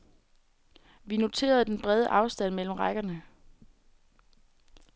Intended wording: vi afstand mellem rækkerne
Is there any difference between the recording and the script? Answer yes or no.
yes